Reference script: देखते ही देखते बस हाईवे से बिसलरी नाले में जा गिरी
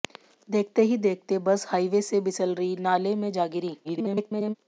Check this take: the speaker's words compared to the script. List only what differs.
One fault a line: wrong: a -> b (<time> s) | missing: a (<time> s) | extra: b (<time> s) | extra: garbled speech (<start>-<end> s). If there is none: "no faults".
extra: garbled speech (3.8-4.5 s)